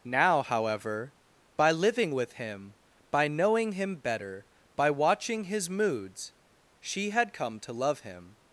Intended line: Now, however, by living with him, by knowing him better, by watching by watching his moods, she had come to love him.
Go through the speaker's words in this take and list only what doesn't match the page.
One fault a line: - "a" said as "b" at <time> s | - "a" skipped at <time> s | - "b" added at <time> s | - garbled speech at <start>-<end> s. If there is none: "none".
- "by watching" skipped at 5.4 s